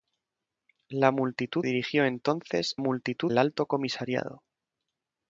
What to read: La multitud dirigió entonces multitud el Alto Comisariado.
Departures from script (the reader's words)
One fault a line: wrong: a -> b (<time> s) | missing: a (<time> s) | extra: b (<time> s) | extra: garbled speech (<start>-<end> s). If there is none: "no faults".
no faults